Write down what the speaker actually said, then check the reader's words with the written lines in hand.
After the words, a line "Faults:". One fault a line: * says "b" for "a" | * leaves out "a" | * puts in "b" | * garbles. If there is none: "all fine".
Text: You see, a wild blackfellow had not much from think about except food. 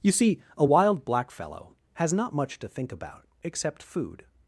You see, a wild blackfellow has not much to think about except food.
Faults:
* says "has" for "had"
* says "to" for "from"